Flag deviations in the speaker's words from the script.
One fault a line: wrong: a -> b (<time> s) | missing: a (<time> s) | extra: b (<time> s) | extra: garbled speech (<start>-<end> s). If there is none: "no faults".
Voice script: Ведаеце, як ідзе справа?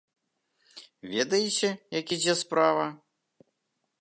no faults